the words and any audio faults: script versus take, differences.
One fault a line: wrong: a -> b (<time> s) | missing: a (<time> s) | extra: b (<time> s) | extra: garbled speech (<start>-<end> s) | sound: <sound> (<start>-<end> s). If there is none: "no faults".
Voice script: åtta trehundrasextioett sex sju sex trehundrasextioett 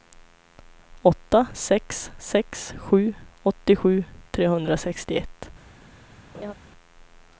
wrong: trehundrasextioett -> sex (1.5 s)
wrong: sex -> åttiosju (3.4 s)
sound: laugh (6.3-6.5 s)